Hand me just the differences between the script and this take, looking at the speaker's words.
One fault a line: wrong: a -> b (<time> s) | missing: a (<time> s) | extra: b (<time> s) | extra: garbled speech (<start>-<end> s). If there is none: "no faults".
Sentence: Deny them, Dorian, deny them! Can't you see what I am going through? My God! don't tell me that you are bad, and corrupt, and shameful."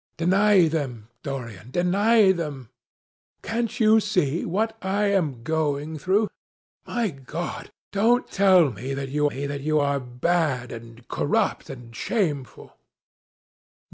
extra: me that you (9.2 s)